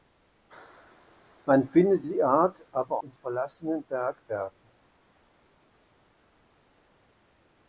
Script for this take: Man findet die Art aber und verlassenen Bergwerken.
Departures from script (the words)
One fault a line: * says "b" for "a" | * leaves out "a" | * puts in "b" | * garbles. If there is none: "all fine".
all fine